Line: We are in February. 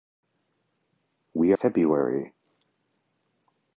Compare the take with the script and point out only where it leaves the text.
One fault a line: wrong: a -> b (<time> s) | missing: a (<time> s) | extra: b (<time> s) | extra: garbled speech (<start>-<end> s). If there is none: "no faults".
missing: are in (1.5 s)